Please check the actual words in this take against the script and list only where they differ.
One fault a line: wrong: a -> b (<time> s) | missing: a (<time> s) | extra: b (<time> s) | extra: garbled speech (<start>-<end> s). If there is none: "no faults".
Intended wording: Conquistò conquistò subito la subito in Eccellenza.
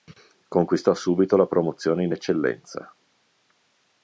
missing: conquistò (0.9 s)
wrong: subito -> promozione (1.4 s)